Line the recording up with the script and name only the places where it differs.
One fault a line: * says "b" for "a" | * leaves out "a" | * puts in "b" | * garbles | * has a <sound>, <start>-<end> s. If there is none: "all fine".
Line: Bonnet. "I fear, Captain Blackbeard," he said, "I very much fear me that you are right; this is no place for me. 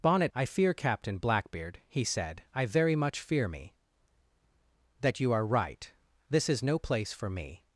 all fine